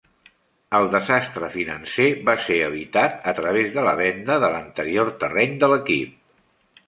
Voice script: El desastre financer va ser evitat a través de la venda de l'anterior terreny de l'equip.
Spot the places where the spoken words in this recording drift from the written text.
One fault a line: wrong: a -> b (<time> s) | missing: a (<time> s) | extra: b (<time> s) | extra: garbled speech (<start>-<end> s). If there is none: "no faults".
no faults